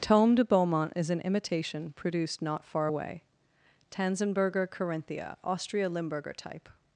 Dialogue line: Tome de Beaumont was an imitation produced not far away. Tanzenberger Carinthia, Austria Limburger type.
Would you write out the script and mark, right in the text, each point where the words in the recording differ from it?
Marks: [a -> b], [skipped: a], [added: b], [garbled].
Tome de Beaumont [was -> is] an imitation produced not far away. Tanzenberger Carinthia, Austria Limburger type.